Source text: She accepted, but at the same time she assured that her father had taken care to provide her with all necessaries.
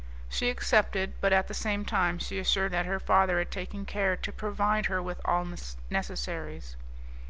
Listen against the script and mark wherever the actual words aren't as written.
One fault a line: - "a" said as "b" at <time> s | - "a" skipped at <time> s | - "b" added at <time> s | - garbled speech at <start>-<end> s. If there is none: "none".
none